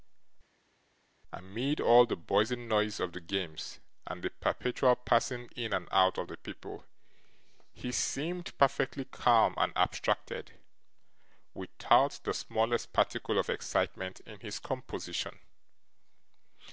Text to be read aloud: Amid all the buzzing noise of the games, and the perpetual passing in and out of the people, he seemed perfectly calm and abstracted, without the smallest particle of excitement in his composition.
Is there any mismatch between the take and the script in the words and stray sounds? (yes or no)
no